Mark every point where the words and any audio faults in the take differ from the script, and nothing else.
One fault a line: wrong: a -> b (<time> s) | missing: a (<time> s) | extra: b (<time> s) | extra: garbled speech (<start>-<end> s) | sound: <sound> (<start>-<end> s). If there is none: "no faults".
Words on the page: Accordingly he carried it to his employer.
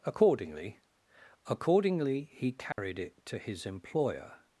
extra: accordingly (1.4 s)
sound: dropout (2.7-2.8 s)